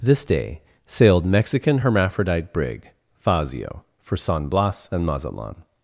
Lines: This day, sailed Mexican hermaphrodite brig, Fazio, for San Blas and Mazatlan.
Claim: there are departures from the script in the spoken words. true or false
false